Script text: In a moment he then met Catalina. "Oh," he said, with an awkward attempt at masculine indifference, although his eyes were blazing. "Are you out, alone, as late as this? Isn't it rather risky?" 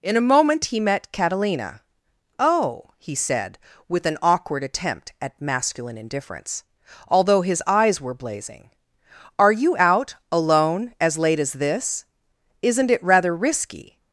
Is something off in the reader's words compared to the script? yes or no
yes